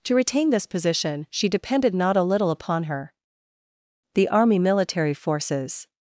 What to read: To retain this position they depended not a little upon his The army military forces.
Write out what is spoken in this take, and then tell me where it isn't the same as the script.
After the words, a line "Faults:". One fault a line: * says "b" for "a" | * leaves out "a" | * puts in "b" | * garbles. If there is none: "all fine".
To retain this position she depended not a little upon her The army military forces.
Faults:
* says "she" for "they"
* says "her" for "his"